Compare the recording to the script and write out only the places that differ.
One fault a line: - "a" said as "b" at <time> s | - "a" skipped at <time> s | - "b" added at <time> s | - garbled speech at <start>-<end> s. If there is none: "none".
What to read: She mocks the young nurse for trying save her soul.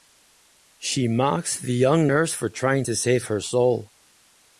- "to" added at 2.8 s